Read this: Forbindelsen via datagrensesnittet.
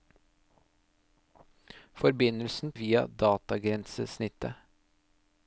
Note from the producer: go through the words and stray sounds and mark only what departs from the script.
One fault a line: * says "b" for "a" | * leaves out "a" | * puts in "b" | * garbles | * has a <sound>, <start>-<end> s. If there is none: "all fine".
all fine